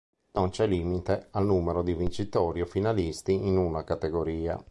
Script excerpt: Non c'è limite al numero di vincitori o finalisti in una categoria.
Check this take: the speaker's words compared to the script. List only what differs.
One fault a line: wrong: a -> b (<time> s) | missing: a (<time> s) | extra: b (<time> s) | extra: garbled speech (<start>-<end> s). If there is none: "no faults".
no faults